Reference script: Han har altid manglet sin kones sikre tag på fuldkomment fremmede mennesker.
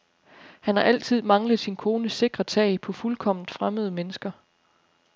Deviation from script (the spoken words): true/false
false